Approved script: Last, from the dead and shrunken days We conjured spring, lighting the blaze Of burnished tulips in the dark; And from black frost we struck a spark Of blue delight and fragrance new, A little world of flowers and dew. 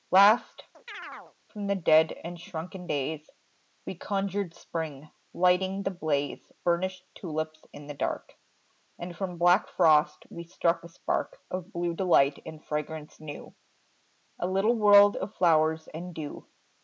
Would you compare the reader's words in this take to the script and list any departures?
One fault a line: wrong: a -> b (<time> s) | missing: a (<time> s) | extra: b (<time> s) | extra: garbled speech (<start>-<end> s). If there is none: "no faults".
missing: Of (6.5 s)